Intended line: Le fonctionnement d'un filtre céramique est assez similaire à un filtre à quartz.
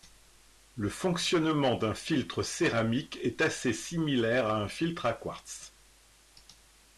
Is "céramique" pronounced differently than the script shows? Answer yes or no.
no